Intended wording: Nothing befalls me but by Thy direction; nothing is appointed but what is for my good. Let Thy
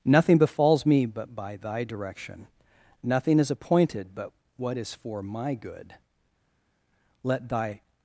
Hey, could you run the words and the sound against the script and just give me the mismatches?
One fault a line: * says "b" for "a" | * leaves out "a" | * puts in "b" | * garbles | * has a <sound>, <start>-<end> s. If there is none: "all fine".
all fine